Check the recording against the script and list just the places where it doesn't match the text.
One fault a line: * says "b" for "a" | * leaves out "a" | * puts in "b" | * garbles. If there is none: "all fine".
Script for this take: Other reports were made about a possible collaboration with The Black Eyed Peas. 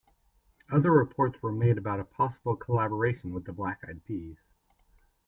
all fine